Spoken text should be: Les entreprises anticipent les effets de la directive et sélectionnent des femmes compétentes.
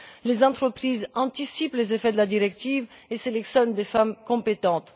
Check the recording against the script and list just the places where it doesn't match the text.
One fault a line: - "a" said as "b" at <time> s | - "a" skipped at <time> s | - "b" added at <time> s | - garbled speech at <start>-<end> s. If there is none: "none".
none